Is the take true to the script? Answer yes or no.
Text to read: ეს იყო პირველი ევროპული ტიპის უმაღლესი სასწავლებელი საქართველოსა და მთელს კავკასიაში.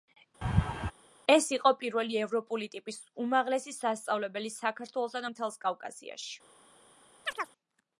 yes